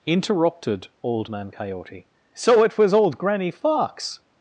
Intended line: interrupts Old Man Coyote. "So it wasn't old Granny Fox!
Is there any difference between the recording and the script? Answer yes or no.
yes